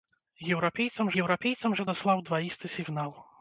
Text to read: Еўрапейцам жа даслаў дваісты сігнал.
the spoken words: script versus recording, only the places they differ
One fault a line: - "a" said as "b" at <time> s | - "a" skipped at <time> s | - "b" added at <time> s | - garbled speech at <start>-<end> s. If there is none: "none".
- "еўрапейцам" added at 1.2 s